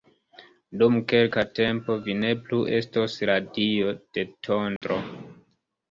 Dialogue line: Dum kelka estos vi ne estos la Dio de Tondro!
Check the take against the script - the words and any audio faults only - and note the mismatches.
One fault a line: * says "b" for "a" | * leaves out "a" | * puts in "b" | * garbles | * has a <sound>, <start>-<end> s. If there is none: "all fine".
* says "tempo" for "estos"
* puts in "plu"
* has a dropout, 4.8-4.8 s